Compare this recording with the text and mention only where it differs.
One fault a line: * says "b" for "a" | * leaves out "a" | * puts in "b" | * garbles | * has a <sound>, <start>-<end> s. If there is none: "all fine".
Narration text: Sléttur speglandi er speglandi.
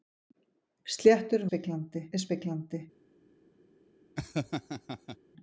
* has a laugh, 4.2-5.2 s